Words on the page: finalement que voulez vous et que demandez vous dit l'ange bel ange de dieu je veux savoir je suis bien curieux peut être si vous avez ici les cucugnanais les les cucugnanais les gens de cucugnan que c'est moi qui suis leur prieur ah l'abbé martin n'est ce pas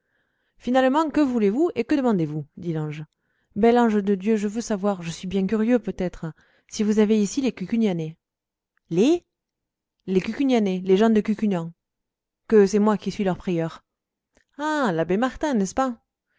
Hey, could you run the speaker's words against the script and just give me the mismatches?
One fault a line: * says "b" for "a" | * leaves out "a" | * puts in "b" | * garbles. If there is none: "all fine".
all fine